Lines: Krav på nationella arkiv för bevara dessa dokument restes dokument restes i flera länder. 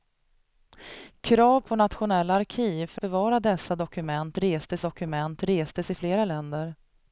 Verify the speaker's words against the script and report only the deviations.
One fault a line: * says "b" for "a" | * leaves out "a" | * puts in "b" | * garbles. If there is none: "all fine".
all fine